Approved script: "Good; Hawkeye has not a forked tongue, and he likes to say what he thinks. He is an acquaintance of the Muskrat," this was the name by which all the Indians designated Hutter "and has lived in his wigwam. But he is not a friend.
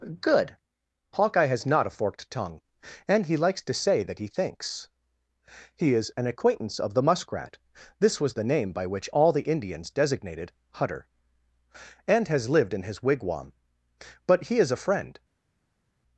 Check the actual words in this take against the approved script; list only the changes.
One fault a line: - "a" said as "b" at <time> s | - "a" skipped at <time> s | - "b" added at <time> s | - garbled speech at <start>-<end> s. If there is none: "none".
- "what" said as "that" at 4.0 s
- "not" skipped at 14.7 s